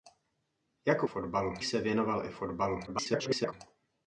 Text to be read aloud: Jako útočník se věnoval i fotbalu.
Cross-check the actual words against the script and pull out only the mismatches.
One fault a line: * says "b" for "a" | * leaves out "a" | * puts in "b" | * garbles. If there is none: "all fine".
* says "fotbalu" for "útočník"
* garbles